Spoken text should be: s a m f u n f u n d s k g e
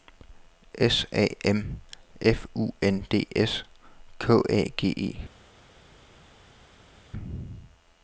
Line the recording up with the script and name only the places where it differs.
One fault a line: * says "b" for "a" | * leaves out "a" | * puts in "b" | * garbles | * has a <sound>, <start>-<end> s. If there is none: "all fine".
* leaves out "f u n"
* puts in "a"